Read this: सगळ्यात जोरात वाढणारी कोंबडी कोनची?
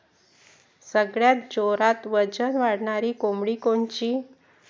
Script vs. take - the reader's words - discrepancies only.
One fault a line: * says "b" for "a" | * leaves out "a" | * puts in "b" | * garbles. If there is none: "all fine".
* puts in "वजन"